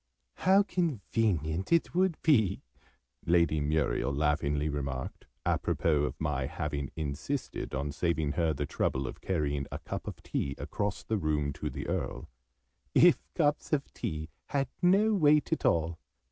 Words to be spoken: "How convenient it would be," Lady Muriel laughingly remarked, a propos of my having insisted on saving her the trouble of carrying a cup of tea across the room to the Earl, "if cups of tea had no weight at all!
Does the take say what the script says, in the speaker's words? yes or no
yes